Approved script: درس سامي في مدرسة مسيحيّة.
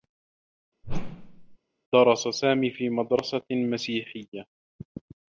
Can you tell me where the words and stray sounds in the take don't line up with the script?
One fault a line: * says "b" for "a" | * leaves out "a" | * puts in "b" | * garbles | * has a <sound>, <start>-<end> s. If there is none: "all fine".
* has a whoosh, 0.8-1.6 s